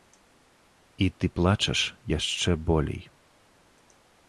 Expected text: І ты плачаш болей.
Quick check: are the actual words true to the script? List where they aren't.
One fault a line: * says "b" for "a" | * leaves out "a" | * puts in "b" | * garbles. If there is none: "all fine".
* puts in "яшчэ"